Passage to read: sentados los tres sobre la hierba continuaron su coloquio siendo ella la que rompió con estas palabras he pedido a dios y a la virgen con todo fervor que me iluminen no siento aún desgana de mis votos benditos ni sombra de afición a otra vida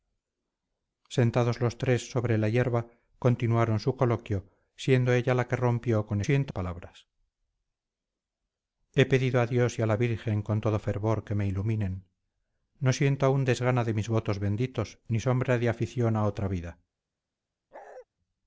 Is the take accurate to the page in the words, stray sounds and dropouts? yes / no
no